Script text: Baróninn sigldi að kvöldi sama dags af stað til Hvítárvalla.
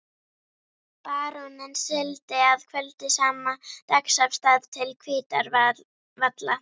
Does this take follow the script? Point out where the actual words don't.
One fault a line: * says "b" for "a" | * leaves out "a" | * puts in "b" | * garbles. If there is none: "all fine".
all fine